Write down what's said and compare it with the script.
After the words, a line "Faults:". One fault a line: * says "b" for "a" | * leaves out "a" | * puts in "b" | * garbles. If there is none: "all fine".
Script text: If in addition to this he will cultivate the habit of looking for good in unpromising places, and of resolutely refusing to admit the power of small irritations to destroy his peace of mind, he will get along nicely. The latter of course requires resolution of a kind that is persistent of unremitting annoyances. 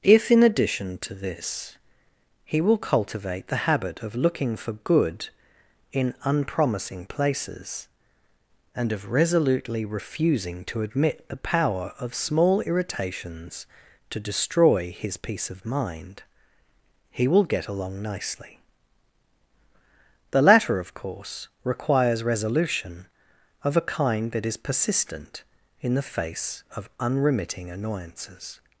If in addition to this he will cultivate the habit of looking for good in unpromising places, and of resolutely refusing to admit the power of small irritations to destroy his peace of mind, he will get along nicely. The latter of course requires resolution of a kind that is persistent in the face of unremitting annoyances.
Faults:
* puts in "in the face"